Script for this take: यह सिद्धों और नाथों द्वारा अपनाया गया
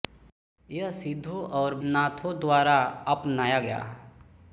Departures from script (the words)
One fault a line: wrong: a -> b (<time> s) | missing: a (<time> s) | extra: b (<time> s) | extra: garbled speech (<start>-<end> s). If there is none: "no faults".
no faults